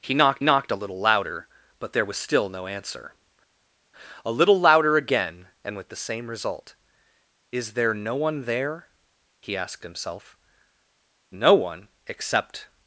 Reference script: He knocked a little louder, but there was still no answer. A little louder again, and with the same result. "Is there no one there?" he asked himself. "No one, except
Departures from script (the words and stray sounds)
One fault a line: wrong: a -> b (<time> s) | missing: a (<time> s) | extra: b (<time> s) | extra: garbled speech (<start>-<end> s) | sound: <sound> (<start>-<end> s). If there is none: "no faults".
extra: knocked (0.4 s)